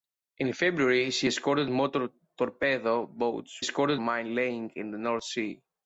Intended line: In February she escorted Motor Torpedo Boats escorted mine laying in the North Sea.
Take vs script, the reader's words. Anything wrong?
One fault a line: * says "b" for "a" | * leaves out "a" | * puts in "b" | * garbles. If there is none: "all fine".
all fine